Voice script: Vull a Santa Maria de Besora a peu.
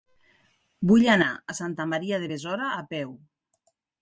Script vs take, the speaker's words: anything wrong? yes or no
yes